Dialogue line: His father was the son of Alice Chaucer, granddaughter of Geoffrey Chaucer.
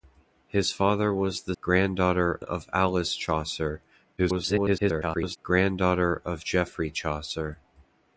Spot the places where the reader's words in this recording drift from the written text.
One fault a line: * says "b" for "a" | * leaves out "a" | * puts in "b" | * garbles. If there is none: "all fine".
* says "granddaughter" for "son"
* garbles